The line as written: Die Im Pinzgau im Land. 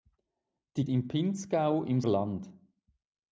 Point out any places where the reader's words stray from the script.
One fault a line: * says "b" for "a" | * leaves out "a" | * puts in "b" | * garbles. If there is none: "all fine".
all fine